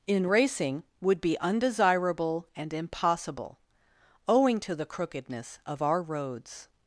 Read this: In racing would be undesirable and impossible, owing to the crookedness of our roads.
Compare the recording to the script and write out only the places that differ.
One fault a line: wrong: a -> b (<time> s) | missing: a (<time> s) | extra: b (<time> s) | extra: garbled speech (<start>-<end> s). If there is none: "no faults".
no faults